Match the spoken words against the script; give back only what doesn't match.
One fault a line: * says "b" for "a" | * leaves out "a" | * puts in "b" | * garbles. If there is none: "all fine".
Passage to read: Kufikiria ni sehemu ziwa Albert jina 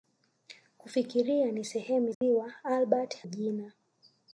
all fine